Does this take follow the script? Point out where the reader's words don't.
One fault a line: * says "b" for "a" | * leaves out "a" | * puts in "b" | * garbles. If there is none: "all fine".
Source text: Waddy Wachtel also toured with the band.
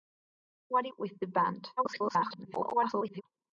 * leaves out "Wachtel also toured"
* garbles